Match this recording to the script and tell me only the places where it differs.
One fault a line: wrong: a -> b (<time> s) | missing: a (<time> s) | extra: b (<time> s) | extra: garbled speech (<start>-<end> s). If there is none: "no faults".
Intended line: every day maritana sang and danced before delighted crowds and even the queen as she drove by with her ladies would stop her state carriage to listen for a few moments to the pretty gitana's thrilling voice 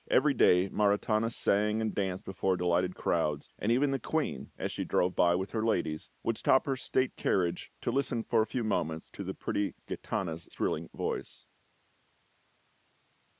no faults